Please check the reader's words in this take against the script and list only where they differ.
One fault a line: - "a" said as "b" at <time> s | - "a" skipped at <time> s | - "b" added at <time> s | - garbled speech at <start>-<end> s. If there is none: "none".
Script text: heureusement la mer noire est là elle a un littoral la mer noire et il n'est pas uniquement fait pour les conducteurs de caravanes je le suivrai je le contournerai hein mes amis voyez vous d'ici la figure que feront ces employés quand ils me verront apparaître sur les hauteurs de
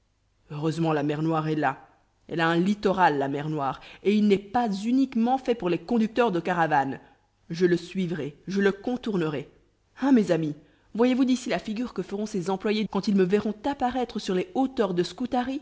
none